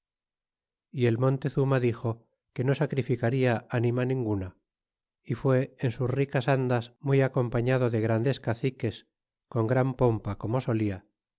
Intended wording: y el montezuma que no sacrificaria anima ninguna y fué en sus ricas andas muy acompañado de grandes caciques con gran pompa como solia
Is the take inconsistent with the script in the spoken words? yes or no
yes